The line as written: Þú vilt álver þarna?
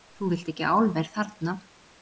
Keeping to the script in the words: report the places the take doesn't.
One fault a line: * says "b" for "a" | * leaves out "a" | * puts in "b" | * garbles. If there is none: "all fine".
* puts in "ekki"